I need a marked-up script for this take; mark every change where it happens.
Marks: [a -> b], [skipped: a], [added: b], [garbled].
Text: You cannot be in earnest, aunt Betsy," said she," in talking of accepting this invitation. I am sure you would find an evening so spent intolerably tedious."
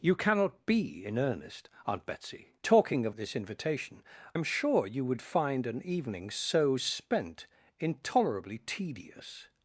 You cannot be in earnest, aunt Betsy," [skipped: said she," in] talking of [skipped: accepting] this invitation. [skipped: I] am sure you would find an evening so spent intolerably tedious."